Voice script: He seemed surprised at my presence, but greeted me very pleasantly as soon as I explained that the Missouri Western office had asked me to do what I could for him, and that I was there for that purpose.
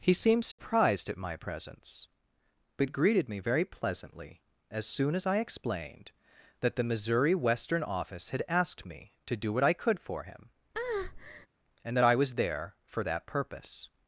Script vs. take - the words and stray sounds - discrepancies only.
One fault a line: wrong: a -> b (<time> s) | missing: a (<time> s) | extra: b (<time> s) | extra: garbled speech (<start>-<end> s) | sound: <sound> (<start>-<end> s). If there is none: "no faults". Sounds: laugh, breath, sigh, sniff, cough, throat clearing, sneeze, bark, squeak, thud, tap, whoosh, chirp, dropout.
sound: dropout (0.5-0.6 s)
sound: breath (10.7-11.5 s)